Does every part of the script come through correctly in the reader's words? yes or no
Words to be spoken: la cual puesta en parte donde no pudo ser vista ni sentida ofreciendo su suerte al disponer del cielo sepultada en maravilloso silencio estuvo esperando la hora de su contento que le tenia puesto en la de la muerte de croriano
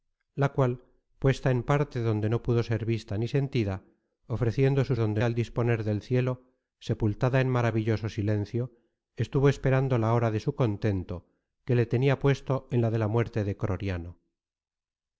no